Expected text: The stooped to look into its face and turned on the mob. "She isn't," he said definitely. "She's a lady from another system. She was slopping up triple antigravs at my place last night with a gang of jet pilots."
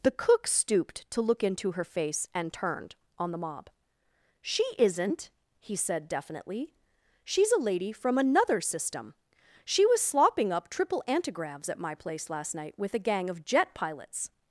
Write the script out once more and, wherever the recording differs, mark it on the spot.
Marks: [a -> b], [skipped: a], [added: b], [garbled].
The [added: cook] stooped to look into [its -> her] face and turned on the mob. "She isn't," he said definitely. "She's a lady from another system. She was slopping up triple antigravs at my place last night with a gang of jet pilots."